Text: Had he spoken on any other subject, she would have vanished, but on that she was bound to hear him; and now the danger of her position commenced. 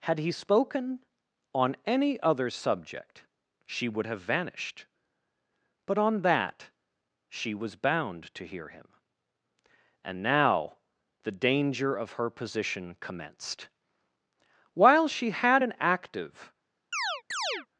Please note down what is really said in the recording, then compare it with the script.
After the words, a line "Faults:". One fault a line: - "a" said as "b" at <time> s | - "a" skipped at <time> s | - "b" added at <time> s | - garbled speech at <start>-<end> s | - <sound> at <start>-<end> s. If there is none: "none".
Had he spoken on any other subject, she would have vanished, but on that she was bound to hear him; and now the danger of her position commenced. While she had an active
Faults:
- "While she had an active" added at 14.7 s
- chirp at 16.9-17.7 s